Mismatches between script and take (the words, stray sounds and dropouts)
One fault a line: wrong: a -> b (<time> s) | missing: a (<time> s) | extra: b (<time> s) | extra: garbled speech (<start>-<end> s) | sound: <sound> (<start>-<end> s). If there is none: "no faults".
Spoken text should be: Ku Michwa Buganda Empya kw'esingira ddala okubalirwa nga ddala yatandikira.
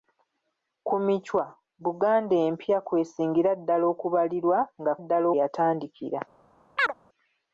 sound: chirp (6.8-6.9 s)